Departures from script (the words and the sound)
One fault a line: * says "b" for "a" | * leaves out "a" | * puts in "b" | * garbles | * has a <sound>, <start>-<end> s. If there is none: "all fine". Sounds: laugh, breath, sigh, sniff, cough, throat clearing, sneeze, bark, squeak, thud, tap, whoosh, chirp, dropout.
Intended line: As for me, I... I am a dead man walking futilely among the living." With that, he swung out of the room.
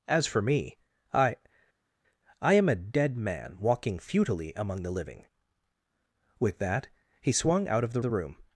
* puts in "the"